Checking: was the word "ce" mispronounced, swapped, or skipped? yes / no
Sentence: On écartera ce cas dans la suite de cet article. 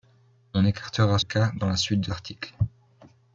yes